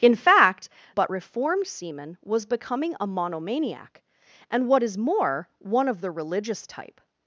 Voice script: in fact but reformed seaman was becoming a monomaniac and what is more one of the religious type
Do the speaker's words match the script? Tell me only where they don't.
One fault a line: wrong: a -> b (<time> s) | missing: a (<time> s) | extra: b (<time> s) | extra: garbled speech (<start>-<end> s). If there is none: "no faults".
no faults